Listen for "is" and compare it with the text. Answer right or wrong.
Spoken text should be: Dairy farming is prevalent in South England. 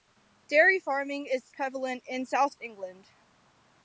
right